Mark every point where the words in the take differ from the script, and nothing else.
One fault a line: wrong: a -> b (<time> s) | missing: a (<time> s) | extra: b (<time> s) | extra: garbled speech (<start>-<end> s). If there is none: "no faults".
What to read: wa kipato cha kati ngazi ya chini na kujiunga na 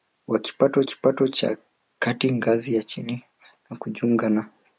extra: kipato (0.8 s)